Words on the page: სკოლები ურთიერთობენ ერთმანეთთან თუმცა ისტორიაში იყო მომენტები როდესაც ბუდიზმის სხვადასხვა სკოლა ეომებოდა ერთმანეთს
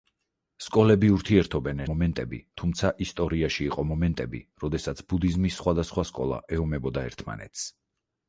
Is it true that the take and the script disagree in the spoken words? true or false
true